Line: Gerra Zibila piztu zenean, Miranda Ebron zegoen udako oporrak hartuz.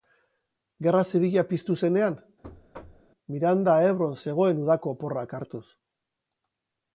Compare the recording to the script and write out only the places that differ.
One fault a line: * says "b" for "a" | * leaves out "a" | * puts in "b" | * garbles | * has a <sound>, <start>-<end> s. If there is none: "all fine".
* has a thud, 2.4-3.1 s